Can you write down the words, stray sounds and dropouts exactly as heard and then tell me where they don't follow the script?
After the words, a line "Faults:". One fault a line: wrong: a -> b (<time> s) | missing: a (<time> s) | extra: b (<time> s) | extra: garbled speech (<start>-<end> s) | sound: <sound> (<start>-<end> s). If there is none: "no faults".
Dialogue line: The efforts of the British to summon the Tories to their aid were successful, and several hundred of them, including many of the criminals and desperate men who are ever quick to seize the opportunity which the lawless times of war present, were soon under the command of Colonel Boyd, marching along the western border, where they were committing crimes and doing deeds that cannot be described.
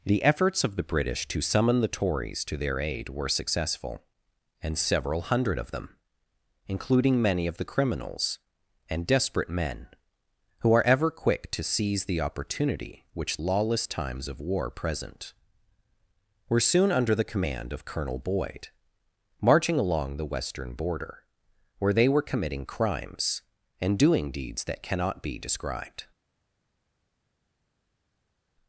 The efforts of the British to summon the Tories to their aid were successful, and several hundred of them, including many of the criminals and desperate men who are ever quick to seize the opportunity which lawless times of war present, were soon under the command of Colonel Boyd, marching along the western border, where they were committing crimes and doing deeds that cannot be described.
Faults:
missing: the (13.4 s)